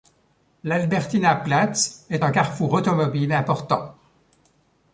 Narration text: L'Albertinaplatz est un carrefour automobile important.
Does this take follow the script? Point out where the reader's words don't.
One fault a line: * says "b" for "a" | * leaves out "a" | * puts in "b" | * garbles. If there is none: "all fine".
all fine